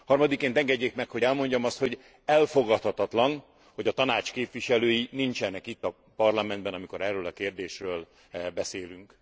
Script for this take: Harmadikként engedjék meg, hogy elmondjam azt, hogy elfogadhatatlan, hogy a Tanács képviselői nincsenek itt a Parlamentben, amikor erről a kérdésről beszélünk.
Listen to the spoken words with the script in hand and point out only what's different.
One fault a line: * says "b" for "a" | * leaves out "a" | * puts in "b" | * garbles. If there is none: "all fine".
all fine